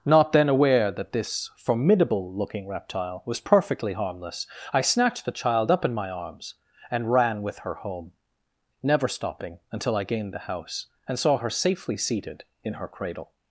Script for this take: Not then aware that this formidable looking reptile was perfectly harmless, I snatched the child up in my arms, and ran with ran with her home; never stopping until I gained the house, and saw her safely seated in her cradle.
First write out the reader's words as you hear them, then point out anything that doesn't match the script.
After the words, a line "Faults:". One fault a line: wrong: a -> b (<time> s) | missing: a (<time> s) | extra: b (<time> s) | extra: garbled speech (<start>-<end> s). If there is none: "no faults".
Not then aware that this formidable looking reptile was perfectly harmless, I snatched the child up in my arms, and ran with her home; never stopping until I gained the house, and saw her safely seated in her cradle.
Faults:
missing: ran with (7.6 s)